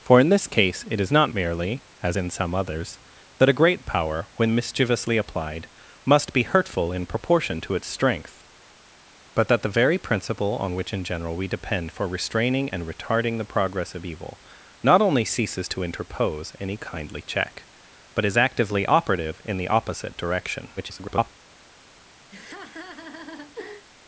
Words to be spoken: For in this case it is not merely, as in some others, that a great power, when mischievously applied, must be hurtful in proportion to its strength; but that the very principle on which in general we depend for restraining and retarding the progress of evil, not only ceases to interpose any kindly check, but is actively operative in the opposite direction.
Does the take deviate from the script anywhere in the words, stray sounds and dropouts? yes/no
yes